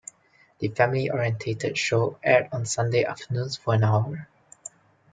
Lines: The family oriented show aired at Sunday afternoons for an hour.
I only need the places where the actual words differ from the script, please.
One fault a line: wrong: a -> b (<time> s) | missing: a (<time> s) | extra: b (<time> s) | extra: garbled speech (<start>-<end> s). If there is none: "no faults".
wrong: at -> on (2.5 s)